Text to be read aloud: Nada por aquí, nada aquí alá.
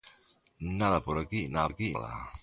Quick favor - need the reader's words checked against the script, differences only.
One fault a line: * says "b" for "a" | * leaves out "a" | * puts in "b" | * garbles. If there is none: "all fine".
all fine